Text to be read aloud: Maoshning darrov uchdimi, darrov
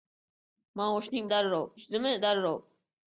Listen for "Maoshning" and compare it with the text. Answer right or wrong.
right